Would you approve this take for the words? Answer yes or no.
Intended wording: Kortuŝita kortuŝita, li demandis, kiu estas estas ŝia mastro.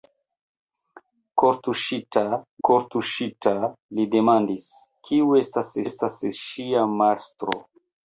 yes